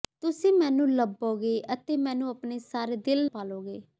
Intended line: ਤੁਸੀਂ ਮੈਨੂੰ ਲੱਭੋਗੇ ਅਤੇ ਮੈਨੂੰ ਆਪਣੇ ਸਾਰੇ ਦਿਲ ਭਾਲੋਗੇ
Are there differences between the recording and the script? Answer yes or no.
no